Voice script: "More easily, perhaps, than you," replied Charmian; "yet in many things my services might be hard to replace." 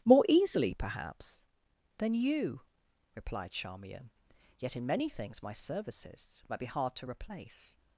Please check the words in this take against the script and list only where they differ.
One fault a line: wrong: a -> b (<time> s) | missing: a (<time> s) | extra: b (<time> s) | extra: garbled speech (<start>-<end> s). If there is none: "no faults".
no faults